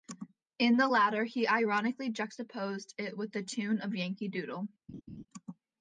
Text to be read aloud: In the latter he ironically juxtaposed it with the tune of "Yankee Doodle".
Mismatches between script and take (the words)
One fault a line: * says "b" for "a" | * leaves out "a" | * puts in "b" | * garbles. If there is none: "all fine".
all fine